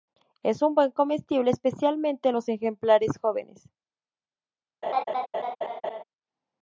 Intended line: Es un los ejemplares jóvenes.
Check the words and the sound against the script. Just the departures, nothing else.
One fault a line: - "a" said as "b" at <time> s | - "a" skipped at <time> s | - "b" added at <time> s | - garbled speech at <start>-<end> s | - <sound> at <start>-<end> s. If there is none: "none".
- "buen comestible especialmente" added at 0.7 s
- laugh at 4.8-6.0 s